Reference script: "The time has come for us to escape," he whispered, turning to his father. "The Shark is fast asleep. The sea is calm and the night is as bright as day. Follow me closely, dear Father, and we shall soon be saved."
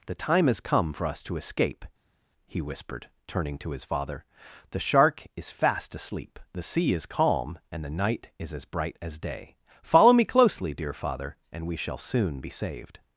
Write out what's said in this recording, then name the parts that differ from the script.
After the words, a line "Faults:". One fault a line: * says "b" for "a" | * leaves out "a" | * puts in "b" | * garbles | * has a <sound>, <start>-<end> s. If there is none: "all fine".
"The time has come for us to escape," he whispered, turning to his father. "The Shark is fast asleep. The sea is calm and the night is as bright as day. Follow me closely, dear Father, and we shall soon be saved."
Faults:
all fine